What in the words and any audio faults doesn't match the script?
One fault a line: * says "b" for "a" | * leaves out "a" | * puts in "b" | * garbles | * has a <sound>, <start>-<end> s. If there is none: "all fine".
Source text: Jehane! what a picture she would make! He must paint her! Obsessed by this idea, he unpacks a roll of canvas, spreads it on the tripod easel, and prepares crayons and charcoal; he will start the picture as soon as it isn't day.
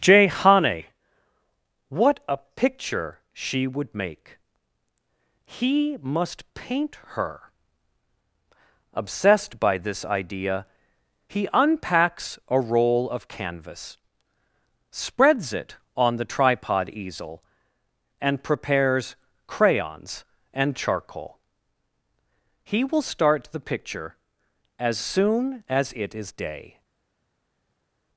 * says "is" for "isn't"